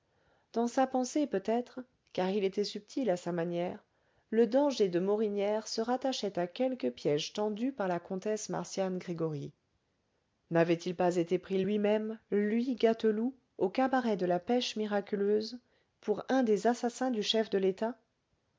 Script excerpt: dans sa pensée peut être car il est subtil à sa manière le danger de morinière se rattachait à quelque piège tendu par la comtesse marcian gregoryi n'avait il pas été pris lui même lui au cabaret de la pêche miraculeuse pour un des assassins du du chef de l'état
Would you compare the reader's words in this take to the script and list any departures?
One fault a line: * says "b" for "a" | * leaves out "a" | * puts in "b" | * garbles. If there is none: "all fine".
* says "était" for "est"
* puts in "gâteloup"
* leaves out "du"